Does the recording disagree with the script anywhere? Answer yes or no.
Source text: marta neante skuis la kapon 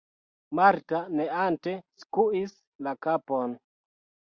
no